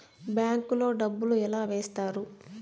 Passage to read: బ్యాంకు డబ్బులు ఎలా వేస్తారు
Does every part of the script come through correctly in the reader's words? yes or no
no